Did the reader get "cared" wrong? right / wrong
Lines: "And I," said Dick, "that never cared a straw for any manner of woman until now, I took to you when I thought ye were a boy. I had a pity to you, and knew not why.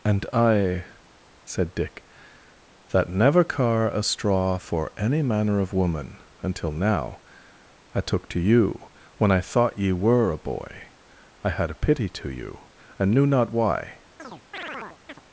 wrong